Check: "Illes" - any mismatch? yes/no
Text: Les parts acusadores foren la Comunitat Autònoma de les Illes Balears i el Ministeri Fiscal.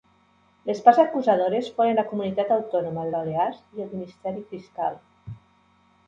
yes